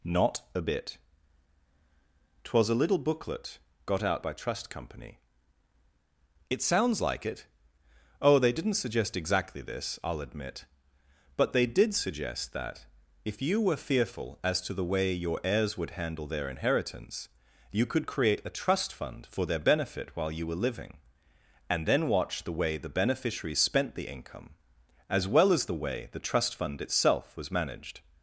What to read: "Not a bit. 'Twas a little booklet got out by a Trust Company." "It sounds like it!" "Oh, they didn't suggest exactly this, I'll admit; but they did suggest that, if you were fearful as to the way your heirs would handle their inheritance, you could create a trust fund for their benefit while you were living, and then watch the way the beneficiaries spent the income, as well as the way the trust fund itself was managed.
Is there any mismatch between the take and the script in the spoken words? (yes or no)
yes